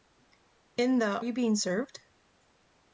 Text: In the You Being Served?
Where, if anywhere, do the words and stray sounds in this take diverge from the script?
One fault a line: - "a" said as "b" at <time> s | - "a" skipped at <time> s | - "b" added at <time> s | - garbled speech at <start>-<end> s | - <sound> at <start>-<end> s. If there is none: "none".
none